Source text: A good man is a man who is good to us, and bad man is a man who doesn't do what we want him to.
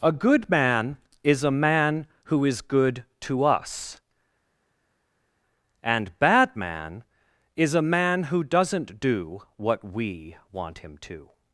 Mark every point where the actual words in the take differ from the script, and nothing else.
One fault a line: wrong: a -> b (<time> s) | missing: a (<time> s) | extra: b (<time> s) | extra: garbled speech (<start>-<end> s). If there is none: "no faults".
no faults